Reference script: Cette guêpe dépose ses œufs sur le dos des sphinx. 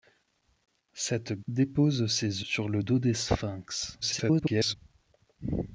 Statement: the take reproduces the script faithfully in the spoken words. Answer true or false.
false